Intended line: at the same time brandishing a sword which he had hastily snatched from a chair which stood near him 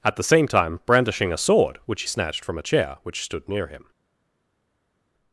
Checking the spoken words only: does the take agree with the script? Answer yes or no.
no